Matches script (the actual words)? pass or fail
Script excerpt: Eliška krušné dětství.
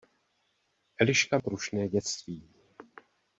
pass